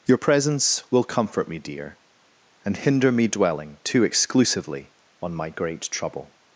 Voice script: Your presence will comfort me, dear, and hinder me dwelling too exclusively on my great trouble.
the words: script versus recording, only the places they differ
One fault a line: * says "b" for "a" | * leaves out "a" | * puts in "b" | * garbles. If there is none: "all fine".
all fine